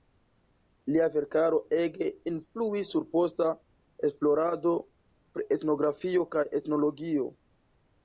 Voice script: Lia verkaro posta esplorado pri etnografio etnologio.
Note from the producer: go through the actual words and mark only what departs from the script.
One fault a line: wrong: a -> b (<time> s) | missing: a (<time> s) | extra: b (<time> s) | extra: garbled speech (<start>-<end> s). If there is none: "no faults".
extra: ege influis sur (1.8 s)
extra: kaj (6.4 s)